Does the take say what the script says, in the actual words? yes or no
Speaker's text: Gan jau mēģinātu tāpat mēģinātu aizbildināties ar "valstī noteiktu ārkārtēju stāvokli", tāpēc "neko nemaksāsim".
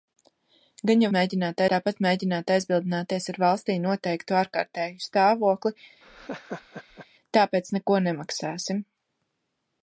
yes